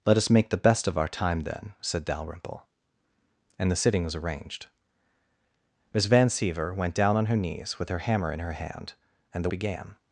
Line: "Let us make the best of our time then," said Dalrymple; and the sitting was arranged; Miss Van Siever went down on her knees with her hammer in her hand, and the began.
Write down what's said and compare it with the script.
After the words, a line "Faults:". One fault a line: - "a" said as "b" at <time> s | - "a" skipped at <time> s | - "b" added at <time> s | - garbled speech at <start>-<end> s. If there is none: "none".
"Let us make the best of our time then," said Dalrymple; and the sitting was arranged; Miss Van Siever went down on her knees with her hammer in her hand, and the began.
Faults:
none